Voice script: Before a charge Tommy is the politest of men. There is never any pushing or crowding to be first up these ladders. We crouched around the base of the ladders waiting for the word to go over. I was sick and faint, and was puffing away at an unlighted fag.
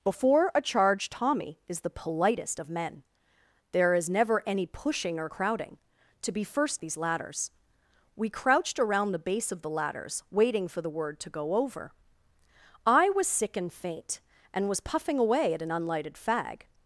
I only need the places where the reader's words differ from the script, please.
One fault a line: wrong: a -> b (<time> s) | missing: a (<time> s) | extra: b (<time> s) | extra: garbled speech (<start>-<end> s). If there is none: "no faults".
missing: up (6.8 s)